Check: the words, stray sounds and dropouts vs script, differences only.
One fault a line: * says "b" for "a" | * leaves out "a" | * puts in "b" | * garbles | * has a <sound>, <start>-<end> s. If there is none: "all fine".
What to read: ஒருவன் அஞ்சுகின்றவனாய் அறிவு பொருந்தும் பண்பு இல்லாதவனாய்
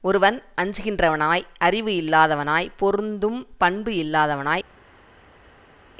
* puts in "இல்லாதவனாய்"